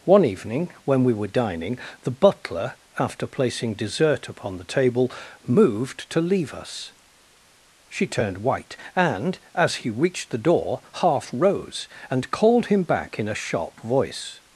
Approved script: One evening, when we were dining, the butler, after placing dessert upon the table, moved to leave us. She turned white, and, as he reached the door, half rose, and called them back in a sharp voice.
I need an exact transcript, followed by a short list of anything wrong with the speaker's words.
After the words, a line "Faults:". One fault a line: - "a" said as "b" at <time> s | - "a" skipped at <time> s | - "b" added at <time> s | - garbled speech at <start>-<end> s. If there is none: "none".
One evening, when we were dining, the butler, after placing dessert upon the table, moved to leave us. She turned white, and, as he reached the door, half rose, and called him back in a sharp voice.
Faults:
- "them" said as "him" at 12.7 s